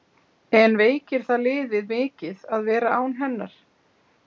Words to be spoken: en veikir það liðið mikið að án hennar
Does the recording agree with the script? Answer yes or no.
no